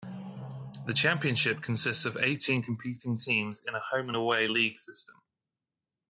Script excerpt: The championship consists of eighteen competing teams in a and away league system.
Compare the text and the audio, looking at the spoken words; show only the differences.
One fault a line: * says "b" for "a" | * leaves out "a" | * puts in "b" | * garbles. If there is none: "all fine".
* puts in "home"